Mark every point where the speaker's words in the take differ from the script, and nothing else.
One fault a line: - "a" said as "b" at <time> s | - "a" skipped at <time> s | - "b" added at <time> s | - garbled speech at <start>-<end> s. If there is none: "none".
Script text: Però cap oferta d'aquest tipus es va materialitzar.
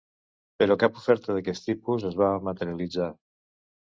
none